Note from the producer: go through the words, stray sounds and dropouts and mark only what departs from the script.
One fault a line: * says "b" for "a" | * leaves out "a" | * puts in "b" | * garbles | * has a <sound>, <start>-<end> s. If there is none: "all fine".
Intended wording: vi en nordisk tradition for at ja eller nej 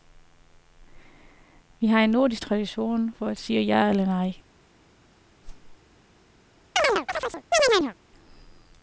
* puts in "har"
* puts in "sige"
* has a whoosh, 5.4-5.8 s
* has a chirp, 6.8-7.9 s